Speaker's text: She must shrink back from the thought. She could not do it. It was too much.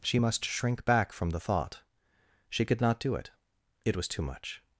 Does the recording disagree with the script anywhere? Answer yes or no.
no